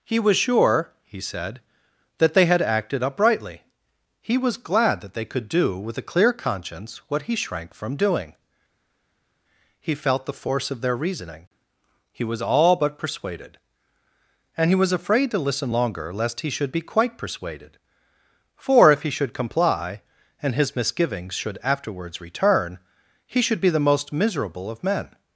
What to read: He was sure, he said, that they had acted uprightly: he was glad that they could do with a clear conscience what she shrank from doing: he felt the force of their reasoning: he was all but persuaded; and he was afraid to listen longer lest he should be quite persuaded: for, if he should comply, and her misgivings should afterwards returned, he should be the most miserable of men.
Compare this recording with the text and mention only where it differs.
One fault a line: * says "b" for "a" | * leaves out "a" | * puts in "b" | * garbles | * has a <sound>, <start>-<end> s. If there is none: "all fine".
* says "he" for "she"
* says "his" for "her"
* says "return" for "returned"